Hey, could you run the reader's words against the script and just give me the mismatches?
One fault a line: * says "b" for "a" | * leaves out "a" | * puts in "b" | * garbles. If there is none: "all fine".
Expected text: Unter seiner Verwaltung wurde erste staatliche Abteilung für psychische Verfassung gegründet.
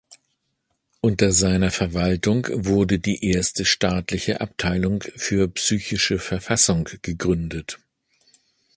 * puts in "die"